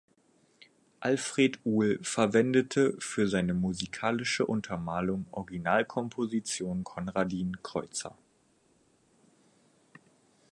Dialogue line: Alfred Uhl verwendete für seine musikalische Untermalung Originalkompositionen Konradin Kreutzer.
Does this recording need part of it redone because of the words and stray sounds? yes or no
no